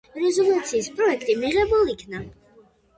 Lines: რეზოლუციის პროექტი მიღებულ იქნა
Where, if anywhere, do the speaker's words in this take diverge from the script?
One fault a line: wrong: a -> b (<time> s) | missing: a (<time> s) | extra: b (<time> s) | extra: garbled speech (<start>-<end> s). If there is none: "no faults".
no faults